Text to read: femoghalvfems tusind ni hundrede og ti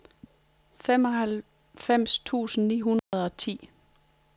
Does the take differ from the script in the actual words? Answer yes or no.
no